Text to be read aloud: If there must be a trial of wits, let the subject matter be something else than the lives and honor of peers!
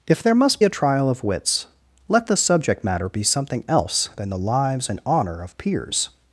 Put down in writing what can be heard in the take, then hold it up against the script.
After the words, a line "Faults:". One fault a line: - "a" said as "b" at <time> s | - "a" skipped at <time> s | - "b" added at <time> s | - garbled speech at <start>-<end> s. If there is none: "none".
If there must a trial of wits, let the subject matter be something else than the lives and honor of peers!
Faults:
- "be" skipped at 0.6 s